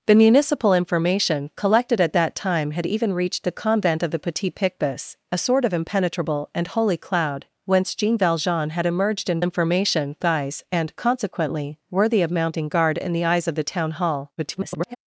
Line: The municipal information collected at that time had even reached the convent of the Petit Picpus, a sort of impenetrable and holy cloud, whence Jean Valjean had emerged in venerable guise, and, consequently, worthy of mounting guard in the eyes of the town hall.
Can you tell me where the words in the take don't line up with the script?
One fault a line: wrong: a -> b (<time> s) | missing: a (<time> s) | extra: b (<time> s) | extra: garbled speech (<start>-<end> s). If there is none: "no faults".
wrong: venerable -> information (9.4 s)
extra: garbled speech (14.4-15.0 s)